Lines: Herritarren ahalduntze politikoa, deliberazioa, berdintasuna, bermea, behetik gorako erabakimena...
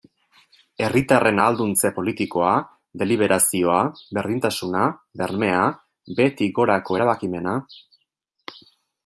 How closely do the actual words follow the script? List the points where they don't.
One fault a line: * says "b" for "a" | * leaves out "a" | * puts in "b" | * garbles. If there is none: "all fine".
all fine